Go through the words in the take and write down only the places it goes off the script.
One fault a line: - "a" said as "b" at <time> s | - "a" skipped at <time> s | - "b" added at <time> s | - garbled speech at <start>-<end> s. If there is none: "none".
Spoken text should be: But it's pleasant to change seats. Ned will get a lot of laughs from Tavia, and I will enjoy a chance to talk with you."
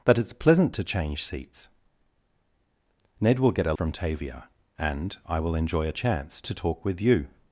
- "lot of laughs" skipped at 3.7 s